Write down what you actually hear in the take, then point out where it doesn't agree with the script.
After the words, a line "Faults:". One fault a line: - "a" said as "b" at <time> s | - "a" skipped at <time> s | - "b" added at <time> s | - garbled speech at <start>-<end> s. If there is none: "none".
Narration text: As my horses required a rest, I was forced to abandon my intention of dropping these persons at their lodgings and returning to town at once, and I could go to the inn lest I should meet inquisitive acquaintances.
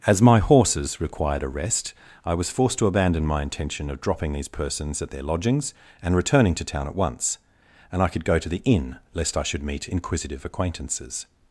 As my horses required a rest, I was forced to abandon my intention of dropping these persons at their lodgings and returning to town at once, and I could go to the inn lest I should meet inquisitive acquaintances.
Faults:
none